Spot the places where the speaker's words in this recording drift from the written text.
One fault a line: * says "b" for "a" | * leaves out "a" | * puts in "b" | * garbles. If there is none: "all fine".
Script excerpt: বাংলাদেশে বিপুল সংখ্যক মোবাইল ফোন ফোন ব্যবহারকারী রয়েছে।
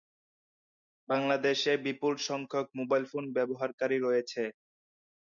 * leaves out "ফোন"